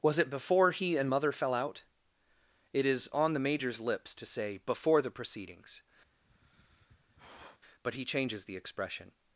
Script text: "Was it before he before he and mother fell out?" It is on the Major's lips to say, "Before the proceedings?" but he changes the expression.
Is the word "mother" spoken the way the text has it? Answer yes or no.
yes